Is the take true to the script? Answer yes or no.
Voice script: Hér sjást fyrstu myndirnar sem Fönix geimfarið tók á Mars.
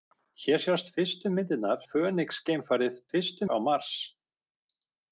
no